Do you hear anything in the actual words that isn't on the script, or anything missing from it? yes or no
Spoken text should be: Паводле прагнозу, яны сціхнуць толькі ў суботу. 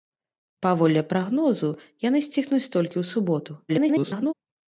yes